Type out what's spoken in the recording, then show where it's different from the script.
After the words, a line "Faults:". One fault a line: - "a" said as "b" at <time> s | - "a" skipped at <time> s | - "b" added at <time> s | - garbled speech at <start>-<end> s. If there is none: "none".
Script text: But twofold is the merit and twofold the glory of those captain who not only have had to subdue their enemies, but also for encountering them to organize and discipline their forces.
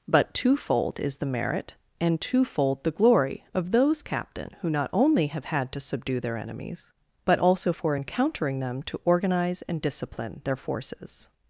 But twofold is the merit and twofold the glory of those captain who not only have had to subdue their enemies, but also for encountering them to organize and discipline their forces.
Faults:
none